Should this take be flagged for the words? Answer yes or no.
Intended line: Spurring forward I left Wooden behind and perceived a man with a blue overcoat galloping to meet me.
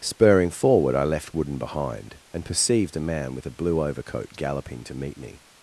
no